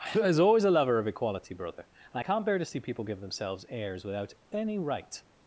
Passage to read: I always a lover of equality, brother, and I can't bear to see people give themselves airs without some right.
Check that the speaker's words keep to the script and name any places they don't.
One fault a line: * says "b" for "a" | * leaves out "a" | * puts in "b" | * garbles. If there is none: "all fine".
* puts in "was"
* says "any" for "some"